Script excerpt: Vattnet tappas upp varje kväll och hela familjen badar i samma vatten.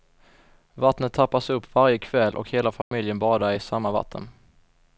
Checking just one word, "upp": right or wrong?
right